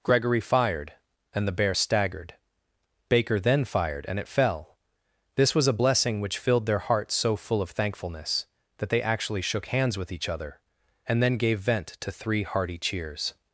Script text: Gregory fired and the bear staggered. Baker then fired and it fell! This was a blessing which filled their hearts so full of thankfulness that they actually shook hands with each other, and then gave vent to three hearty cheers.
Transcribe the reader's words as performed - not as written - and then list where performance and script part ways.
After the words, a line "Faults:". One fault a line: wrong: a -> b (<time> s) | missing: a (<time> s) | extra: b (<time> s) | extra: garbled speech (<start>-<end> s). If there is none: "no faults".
Gregory fired and the bear staggered. Baker then fired and it fell! This was a blessing which filled their hearts so full of thankfulness that they actually shook hands with each other, and then gave vent to three hearty cheers.
Faults:
no faults